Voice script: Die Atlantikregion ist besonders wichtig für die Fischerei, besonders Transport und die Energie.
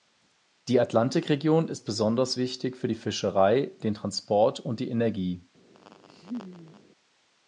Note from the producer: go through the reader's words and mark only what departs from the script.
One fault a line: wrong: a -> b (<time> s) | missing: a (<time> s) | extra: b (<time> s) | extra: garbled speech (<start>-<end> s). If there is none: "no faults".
wrong: besonders -> den (3.8 s)